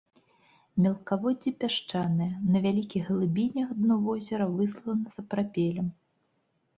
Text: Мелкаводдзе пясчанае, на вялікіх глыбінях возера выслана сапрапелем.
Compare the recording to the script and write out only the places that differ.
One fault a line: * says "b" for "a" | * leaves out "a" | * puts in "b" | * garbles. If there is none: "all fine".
* puts in "дно"